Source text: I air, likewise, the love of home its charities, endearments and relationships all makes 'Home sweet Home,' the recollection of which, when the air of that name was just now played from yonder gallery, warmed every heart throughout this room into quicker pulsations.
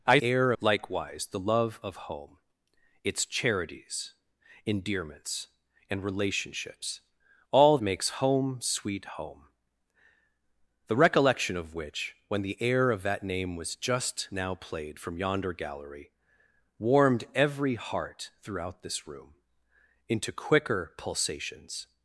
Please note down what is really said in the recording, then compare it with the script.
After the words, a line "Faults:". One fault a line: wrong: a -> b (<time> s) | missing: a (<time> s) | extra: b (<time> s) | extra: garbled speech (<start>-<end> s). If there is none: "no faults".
I air, likewise, the love of home its charities, endearments and relationships all makes 'Home sweet Home,' the recollection of which, when the air of that name was just now played from yonder gallery, warmed every heart throughout this room into quicker pulsations.
Faults:
no faults